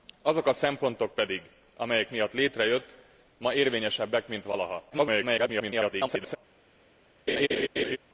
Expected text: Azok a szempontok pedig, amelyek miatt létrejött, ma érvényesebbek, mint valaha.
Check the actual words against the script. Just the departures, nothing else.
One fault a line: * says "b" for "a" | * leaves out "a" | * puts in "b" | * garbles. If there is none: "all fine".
* garbles